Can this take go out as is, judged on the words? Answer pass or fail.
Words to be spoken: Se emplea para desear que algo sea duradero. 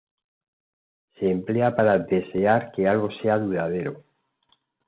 pass